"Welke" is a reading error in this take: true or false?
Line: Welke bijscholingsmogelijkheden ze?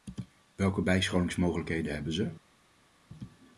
false